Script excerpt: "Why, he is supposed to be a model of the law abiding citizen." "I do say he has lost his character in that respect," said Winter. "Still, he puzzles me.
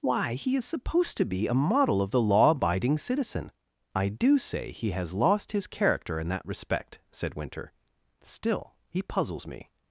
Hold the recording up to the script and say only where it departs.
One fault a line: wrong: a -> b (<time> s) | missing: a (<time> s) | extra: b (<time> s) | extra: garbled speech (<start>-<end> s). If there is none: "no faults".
no faults